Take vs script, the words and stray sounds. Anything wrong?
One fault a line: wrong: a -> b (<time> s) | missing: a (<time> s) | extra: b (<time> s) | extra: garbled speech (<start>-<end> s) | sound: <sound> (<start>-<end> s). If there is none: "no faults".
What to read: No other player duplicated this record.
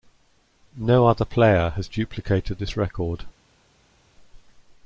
extra: has (1.7 s)